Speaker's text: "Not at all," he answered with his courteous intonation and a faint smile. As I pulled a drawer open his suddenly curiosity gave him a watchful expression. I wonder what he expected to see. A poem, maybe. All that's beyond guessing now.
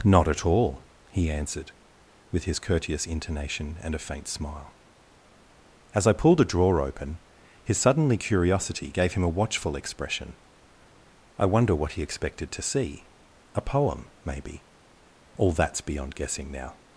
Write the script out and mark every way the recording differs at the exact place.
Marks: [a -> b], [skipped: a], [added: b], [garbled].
"Not at all," he answered with his courteous intonation and a faint smile. As I pulled a drawer open his suddenly curiosity gave him a watchful expression. I wonder what he expected to see. A poem, maybe. All that's beyond guessing now.